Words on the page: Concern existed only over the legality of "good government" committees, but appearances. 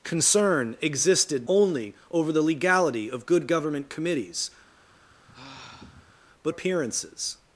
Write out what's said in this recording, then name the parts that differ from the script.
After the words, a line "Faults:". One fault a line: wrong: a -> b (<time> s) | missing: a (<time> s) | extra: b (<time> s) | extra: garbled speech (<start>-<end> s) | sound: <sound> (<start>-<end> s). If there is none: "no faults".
Concern existed only over the legality of "good government" committees, but appearances.
Faults:
sound: sigh (4.8-6.2 s)